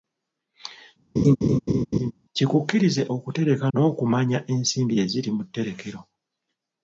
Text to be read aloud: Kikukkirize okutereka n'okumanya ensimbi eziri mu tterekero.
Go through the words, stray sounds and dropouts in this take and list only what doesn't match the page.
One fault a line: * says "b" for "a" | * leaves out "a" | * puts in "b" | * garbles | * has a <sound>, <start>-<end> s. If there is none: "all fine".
* has a laugh, 1.2-2.1 s